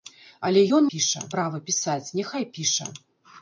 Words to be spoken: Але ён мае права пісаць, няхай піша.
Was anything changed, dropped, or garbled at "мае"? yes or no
yes